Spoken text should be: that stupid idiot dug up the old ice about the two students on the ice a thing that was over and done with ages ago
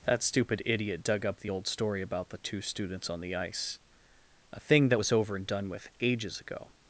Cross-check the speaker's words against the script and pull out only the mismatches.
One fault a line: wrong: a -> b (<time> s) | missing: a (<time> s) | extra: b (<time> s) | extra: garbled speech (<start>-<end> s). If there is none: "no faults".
wrong: ice -> story (1.7 s)